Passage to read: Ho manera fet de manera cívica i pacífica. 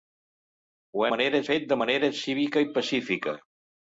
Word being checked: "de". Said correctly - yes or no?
yes